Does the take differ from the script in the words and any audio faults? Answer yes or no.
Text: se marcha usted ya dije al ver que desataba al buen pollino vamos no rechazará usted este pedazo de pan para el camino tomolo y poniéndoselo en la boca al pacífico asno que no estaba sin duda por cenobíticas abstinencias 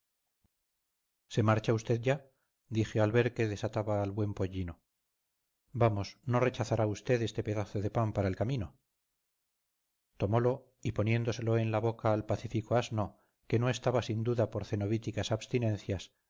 no